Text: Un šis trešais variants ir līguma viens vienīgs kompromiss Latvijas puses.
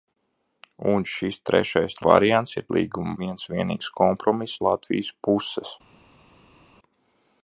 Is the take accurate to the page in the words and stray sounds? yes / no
yes